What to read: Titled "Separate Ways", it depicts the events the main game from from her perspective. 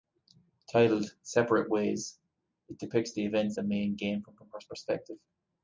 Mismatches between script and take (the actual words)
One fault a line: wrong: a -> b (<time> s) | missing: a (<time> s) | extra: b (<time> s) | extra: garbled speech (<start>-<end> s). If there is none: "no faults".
no faults